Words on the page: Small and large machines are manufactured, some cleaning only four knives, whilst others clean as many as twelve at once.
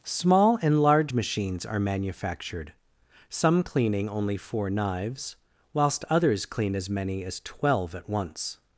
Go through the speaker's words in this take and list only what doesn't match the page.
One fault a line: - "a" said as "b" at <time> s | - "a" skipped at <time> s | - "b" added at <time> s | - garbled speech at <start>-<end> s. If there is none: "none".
none